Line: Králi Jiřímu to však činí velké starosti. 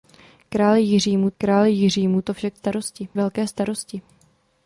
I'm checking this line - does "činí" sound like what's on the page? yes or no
no